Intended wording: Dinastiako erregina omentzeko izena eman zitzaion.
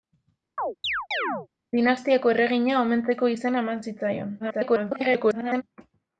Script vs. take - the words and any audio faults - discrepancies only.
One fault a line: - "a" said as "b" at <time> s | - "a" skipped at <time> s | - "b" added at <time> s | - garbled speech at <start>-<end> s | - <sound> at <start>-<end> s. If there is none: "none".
- chirp at 0.6-1.5 s
- garbled speech at 4.4-5.6 s